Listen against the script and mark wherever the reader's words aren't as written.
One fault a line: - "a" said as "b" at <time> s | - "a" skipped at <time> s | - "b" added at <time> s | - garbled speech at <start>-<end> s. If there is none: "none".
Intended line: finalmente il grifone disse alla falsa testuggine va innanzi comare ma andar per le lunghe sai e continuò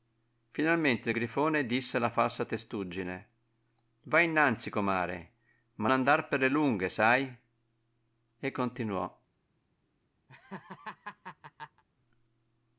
none